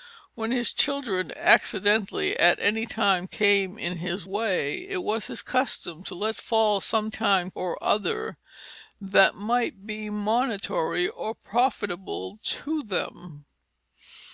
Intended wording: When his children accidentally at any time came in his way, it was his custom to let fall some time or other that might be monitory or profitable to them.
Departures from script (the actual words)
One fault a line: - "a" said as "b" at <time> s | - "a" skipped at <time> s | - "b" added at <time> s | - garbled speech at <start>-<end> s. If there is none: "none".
none